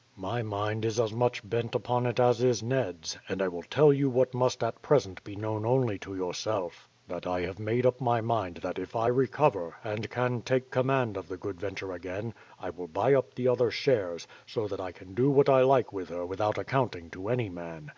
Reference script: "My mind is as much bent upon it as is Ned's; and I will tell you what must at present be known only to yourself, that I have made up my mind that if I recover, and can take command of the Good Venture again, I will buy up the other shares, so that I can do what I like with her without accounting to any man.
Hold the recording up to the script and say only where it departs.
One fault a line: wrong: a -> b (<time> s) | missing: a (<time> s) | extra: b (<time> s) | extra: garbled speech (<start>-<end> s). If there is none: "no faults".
no faults